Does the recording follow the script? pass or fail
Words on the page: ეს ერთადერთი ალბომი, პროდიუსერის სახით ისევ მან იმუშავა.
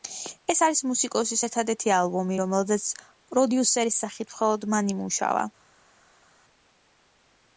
fail